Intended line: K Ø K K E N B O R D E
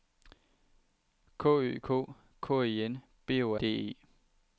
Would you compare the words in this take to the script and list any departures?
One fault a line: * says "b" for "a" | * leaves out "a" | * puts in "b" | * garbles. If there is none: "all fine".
* leaves out "R"